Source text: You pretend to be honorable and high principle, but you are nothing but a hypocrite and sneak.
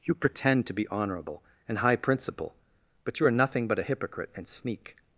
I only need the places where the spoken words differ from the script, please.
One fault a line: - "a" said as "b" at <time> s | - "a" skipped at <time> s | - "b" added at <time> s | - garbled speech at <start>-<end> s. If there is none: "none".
none